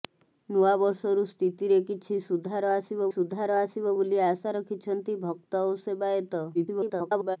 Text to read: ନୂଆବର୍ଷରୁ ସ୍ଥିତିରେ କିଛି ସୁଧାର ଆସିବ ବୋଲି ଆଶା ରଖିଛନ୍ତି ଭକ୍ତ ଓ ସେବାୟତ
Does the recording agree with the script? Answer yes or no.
no